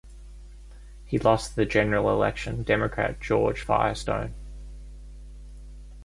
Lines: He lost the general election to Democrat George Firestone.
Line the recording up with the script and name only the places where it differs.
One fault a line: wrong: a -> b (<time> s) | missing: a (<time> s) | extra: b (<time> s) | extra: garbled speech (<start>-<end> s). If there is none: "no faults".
missing: to (2.6 s)